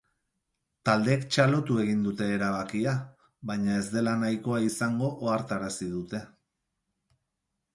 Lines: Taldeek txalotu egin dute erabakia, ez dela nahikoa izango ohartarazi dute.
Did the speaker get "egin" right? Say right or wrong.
right